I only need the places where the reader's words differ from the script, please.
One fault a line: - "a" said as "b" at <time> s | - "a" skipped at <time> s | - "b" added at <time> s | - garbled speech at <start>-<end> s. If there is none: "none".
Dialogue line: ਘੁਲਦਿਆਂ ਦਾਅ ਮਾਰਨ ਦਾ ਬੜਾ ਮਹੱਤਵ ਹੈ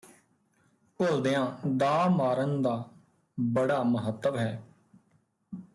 none